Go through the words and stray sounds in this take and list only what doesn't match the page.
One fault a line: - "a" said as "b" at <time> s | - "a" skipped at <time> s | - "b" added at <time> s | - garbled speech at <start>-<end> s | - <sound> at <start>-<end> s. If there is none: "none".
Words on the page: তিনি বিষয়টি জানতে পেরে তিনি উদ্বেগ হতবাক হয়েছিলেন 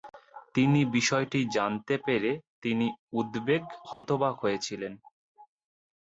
- dropout at 3.9-4.0 s